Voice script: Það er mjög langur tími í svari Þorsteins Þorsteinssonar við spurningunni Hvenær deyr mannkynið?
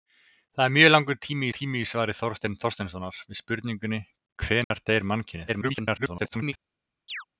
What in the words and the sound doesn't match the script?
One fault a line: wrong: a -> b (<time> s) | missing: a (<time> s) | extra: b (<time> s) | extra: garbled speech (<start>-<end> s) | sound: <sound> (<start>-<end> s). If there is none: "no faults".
extra: tími (1.6 s)
sound: dropout (4.6-4.7 s)
extra: garbled speech (5.5-6.5 s)
sound: chirp (7.1-7.2 s)